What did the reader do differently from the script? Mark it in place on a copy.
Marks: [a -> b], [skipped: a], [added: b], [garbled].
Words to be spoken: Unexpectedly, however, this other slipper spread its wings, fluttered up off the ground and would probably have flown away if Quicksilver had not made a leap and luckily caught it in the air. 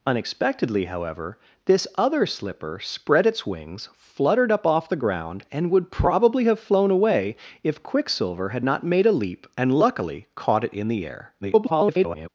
Unexpectedly, however, this other slipper spread its wings, fluttered up off the ground and would probably have flown away if Quicksilver had not made a leap and luckily caught it in the air. [garbled]